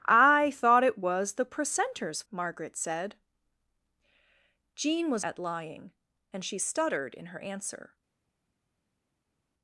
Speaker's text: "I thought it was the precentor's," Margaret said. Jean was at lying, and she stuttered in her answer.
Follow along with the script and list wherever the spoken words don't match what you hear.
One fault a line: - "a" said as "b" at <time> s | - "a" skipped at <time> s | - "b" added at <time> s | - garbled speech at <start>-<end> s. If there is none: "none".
none